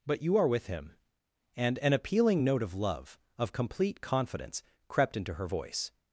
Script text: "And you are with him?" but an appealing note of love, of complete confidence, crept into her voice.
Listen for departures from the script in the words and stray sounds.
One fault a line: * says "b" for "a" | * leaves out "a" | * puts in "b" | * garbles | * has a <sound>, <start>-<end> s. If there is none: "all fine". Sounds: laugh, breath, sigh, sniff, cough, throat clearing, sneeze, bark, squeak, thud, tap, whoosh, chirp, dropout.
* says "But" for "And"
* says "and" for "but"